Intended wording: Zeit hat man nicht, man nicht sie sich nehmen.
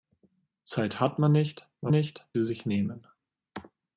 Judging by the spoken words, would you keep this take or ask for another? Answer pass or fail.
pass